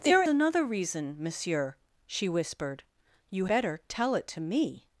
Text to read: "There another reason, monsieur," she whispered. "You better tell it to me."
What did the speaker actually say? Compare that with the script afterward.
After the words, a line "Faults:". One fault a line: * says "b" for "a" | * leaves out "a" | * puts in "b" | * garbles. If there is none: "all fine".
"There another reason, monsieur," she whispered. "You better tell it to me."
Faults:
all fine